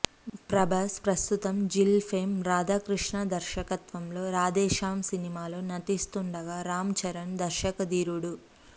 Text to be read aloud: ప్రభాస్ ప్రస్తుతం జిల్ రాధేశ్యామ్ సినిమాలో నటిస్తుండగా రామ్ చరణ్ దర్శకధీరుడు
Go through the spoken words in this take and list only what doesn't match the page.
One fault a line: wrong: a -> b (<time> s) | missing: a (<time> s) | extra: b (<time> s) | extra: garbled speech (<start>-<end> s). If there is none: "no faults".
extra: ఫేమ్ రాధాకృష్ణ దర్శకత్వంలో (2.1 s)